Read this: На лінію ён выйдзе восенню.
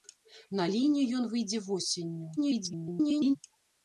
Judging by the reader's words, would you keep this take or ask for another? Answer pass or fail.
fail